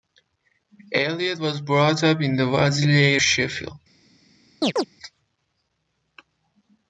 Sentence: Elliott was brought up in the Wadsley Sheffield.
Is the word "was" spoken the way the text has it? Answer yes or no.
yes